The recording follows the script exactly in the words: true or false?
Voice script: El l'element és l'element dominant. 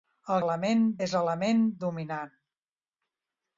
true